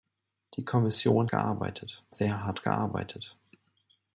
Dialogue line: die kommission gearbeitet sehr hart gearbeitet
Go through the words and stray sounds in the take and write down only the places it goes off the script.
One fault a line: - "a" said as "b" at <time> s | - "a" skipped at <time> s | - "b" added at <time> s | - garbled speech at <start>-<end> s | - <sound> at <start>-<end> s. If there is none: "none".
none